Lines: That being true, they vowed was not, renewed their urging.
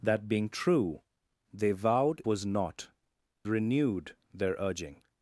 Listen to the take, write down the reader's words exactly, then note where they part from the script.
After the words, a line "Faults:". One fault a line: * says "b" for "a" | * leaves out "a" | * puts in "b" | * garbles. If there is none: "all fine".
That being true, they vowed was not, renewed their urging.
Faults:
all fine